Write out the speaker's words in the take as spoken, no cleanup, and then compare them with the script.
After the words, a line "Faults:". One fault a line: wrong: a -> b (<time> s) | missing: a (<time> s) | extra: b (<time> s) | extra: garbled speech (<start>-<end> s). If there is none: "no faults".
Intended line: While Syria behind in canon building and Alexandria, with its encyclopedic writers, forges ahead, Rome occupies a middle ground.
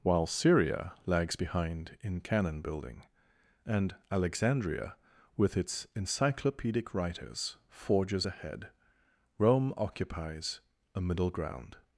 While Syria lags behind in canon building and Alexandria, with its encyclopedic writers, forges ahead, Rome occupies a middle ground.
Faults:
extra: lags (1.1 s)